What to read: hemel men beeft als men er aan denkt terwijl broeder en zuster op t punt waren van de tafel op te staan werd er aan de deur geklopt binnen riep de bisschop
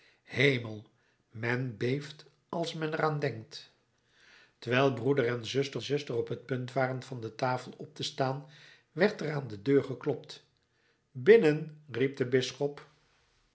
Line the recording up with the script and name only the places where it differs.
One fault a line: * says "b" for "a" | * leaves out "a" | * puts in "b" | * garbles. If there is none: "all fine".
* puts in "zuster"